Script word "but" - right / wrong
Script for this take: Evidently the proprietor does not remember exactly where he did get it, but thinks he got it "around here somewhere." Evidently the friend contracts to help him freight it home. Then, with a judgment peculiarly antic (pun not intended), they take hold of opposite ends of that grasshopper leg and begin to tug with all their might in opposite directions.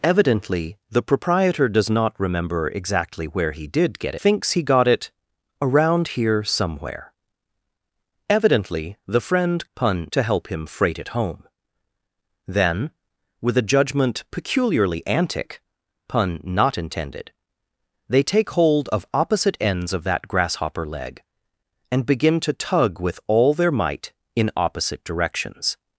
wrong